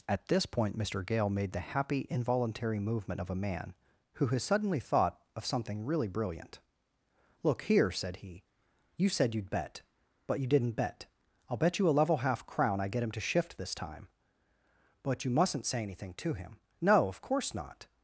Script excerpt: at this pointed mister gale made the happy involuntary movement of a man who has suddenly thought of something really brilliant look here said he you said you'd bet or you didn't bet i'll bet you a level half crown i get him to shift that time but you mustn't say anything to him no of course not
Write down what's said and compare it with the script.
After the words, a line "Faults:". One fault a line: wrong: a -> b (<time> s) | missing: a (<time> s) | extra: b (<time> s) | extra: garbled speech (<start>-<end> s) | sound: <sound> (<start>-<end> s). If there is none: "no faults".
at this point mister gale made the happy involuntary movement of a man who has suddenly thought of something really brilliant look here said he you said you'd bet but you didn't bet i'll bet you a level half crown i get him to shift this time but you mustn't say anything to him no of course not
Faults:
wrong: pointed -> point (0.5 s)
wrong: or -> but (10.3 s)
wrong: that -> this (13.6 s)